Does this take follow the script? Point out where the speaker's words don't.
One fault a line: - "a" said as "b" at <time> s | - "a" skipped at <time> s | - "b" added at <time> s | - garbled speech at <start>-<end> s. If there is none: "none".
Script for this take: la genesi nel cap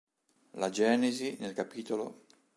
none